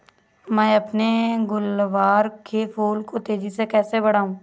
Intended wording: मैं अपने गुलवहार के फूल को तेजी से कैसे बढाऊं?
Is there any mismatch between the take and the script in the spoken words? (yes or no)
no